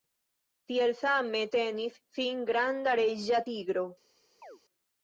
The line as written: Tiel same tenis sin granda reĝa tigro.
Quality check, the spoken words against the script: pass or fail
pass